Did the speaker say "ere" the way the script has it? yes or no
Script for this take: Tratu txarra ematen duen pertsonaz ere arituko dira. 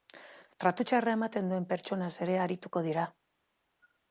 yes